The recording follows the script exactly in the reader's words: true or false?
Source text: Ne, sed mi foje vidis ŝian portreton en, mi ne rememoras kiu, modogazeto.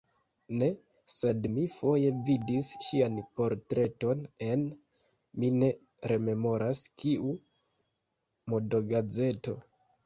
true